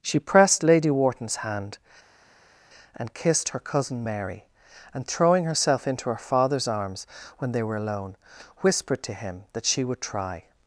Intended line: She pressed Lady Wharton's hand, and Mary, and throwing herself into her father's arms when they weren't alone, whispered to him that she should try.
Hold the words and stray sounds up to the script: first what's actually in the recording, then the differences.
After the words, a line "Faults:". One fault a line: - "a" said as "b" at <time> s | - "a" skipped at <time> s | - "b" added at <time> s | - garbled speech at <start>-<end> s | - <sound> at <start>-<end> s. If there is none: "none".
She pressed Lady Wharton's hand, and kissed her cousin Mary, and throwing herself into her father's arms when they were alone, whispered to him that she would try.
Faults:
- "kissed her cousin" added at 3.1 s
- "weren't" said as "were" at 7.6 s
- "should" said as "would" at 9.8 s